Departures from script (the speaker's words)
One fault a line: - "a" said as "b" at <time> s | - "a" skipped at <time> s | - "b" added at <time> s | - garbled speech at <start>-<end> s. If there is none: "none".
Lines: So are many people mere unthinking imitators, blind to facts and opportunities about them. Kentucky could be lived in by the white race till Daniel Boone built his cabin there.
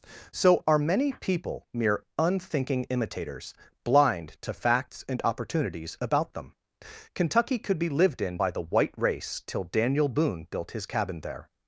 none